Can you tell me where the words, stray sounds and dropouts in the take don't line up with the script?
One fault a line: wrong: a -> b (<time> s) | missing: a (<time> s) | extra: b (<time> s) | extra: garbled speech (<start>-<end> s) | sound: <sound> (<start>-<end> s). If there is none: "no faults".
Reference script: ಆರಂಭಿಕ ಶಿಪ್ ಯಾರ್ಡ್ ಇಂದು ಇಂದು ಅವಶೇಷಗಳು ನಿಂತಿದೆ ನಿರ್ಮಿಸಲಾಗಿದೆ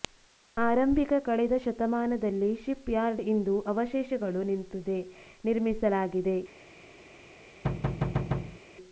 extra: ಕಳೆದ ಶತಮಾನದಲ್ಲಿ (1.2 s)
missing: ಇಂದು (3.5 s)
sound: thud (7.6-8.6 s)